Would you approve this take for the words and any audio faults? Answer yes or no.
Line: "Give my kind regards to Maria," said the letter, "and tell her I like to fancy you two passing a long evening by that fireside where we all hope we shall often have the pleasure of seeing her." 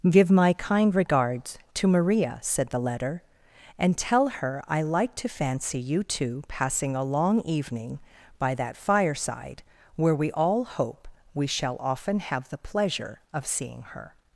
yes